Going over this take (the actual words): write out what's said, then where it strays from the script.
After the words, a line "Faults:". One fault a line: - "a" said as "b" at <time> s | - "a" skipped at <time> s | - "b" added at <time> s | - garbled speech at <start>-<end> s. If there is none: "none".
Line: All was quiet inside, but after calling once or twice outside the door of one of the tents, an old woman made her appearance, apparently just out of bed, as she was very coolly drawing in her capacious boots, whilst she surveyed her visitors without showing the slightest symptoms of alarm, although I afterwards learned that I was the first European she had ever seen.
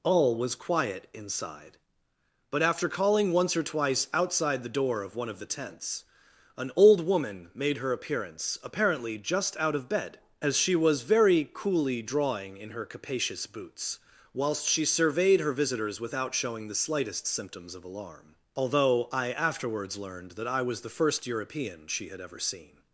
All was quiet inside, but after calling once or twice outside the door of one of the tents, an old woman made her appearance, apparently just out of bed, as she was very coolly drawing in her capacious boots, whilst she surveyed her visitors without showing the slightest symptoms of alarm, although I afterwards learned that I was the first European she had ever seen.
Faults:
none